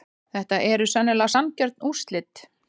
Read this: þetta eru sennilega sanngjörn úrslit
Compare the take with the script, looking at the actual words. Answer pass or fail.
pass